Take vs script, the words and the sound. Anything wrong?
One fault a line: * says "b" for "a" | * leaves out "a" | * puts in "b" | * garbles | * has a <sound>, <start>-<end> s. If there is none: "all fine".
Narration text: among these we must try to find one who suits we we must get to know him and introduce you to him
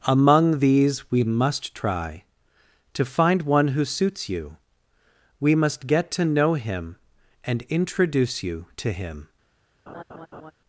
* says "you" for "we"
* has a laugh, 9.9-10.5 s